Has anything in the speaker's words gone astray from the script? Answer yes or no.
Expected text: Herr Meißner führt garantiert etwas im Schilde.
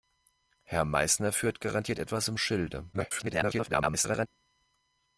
yes